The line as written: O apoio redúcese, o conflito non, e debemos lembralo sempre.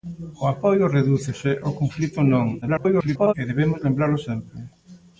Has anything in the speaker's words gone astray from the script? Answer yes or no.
yes